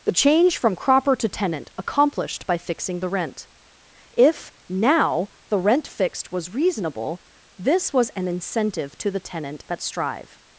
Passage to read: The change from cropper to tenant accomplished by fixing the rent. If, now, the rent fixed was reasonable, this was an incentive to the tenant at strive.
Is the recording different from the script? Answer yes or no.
no